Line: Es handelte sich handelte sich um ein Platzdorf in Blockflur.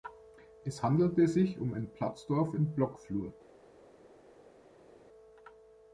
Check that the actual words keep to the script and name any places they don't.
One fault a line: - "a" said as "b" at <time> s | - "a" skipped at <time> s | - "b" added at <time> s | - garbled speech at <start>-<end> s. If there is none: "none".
- "handelte sich" skipped at 1.6 s